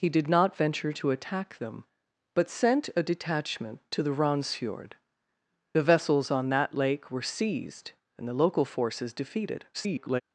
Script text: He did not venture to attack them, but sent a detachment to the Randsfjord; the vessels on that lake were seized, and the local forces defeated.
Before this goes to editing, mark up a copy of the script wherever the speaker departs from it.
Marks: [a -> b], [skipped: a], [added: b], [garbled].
He did not venture to attack them, but sent a detachment to the Randsfjord; the vessels on that lake were seized, and the local forces defeated. [garbled]